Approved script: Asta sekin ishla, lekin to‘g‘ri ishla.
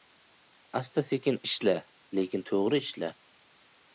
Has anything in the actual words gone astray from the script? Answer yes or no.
no